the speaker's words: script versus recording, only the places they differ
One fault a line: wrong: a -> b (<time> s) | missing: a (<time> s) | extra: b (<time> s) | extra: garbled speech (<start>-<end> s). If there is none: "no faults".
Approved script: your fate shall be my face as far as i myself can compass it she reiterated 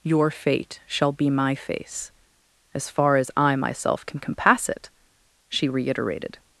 no faults